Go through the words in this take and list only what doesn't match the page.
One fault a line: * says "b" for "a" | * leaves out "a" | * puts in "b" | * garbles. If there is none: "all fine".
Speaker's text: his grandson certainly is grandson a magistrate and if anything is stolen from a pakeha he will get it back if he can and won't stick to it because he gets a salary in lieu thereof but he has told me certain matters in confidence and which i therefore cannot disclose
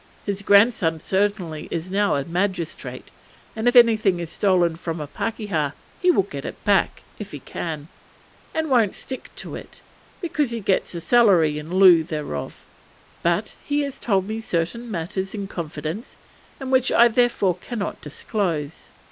* says "now" for "grandson"